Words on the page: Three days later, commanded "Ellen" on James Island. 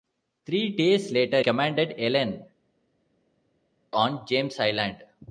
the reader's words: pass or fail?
pass